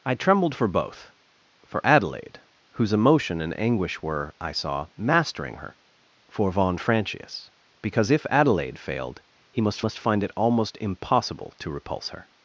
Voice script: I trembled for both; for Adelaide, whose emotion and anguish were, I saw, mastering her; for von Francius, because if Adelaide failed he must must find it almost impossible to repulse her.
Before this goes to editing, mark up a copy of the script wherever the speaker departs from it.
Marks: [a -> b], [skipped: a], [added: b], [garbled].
I trembled for both; for Adelaide, whose emotion and anguish were, I saw, mastering her; for von Francius, because if Adelaide failed he must must find it almost impossible to repulse her.